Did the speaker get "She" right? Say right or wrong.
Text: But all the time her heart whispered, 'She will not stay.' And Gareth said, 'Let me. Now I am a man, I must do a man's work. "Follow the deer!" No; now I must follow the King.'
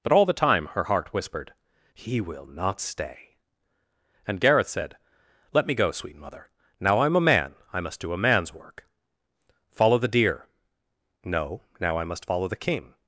wrong